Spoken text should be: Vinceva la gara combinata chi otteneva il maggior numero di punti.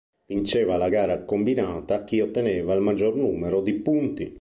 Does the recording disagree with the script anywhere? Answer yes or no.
no